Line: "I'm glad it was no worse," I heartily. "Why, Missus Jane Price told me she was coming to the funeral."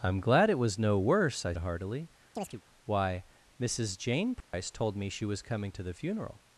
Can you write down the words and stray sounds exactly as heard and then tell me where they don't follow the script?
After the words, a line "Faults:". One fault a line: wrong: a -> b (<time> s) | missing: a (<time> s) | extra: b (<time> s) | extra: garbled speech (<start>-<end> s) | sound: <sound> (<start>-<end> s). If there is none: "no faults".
"I'm glad it was no worse," I heartily. "Why, Missus Jane Price told me she was coming to the funeral."
Faults:
sound: chirp (2.4-2.6 s)
sound: dropout (4.4-4.5 s)